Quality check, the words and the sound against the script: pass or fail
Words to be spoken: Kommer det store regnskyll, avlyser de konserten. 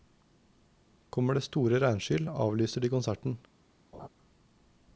fail